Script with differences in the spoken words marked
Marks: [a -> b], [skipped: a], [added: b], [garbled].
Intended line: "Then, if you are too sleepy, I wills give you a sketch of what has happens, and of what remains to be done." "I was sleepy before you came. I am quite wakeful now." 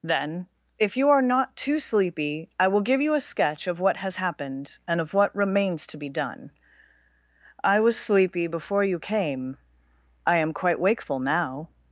"Then, if you are [added: not] too sleepy, I [wills -> will] give you a sketch of what has [happens, -> happened] and of what remains to be done." "I was sleepy before you came. I am quite wakeful now."